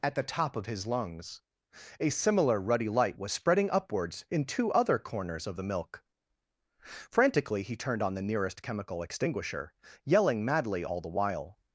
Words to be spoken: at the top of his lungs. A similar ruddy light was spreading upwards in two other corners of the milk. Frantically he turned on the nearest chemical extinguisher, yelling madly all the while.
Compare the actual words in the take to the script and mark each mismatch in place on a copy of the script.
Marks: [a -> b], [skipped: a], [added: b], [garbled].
at the top of his lungs. A similar ruddy light was spreading upwards in two other corners of the milk. Frantically he turned on the nearest chemical extinguisher, yelling madly all the while.